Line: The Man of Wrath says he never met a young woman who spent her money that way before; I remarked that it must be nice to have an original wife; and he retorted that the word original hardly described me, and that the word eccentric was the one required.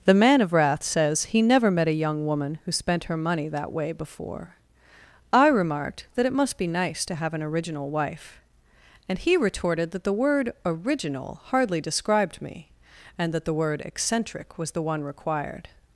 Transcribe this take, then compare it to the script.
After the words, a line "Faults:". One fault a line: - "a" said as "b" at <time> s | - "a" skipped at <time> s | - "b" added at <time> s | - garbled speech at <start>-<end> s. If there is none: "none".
The Man of Wrath says he never met a young woman who spent her money that way before; I remarked that it must be nice to have an original wife; and he retorted that the word original hardly described me, and that the word eccentric was the one required.
Faults:
none